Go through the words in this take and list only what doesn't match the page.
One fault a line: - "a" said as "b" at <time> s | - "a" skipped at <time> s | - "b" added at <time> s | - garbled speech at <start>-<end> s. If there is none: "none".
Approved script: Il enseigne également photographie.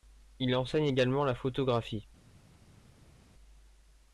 - "la" added at 1.2 s